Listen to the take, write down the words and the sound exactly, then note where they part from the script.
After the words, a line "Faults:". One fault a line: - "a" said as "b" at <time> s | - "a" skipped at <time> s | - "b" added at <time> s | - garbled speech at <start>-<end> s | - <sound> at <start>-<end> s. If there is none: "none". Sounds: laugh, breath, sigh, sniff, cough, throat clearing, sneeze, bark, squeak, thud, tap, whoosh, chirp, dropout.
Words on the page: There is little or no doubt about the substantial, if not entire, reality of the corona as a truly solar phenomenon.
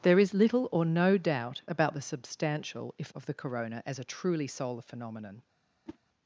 There is little or no doubt about the substantial, if of the corona as a truly solar phenomenon.
Faults:
- "not entire reality" skipped at 3.1 s
- whoosh at 5.9-6.0 s